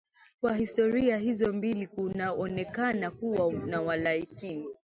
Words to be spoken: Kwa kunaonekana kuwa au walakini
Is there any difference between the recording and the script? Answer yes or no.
yes